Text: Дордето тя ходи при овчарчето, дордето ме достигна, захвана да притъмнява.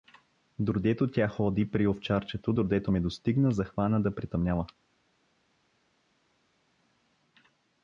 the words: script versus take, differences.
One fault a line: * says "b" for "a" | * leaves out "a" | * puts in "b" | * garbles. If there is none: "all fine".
all fine